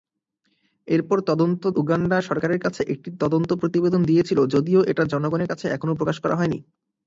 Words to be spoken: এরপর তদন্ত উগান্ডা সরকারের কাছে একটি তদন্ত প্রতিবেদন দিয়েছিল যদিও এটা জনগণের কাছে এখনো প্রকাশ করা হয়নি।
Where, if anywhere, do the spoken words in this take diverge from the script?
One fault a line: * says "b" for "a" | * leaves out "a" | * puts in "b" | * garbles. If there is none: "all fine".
all fine